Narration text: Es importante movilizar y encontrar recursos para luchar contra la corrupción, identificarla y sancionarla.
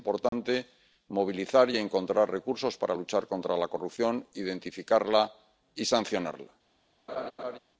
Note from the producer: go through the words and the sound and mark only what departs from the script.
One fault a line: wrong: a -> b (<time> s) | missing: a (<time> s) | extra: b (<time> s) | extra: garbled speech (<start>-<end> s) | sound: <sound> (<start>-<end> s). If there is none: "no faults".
sound: dropout (0.3-0.3 s)
sound: laugh (7.1-7.6 s)